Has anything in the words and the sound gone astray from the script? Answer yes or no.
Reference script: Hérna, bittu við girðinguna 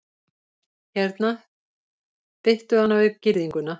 yes